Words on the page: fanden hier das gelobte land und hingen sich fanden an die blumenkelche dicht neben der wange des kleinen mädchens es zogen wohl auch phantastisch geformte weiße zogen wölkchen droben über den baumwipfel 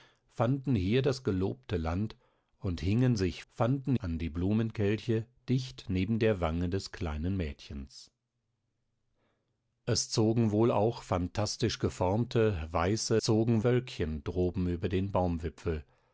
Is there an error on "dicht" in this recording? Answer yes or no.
no